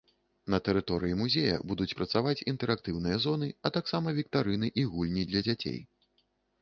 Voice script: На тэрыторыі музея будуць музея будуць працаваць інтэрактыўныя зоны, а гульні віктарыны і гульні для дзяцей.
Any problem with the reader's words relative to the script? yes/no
yes